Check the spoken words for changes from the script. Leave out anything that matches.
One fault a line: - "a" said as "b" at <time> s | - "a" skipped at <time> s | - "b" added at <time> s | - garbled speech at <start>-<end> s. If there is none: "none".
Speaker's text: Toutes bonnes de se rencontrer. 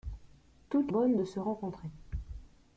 none